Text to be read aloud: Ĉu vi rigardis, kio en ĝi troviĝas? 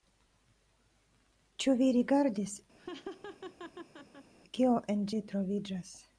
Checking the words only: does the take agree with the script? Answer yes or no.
yes